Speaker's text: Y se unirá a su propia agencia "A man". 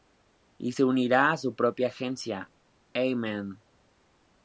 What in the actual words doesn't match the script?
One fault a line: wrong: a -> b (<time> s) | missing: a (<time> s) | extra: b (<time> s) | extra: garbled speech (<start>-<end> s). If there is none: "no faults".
no faults